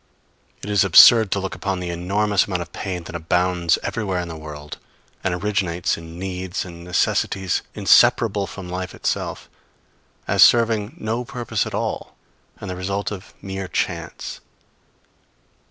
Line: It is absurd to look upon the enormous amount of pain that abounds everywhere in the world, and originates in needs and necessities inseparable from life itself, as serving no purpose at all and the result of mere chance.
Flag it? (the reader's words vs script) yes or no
no